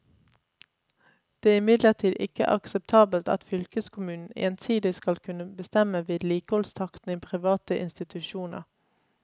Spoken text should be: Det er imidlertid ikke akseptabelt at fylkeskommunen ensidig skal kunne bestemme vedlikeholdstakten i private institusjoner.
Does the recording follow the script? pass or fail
pass